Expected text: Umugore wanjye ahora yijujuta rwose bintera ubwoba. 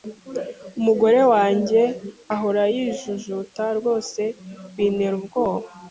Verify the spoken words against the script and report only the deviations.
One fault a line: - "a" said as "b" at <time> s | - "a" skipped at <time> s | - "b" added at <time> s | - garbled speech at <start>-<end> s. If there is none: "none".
none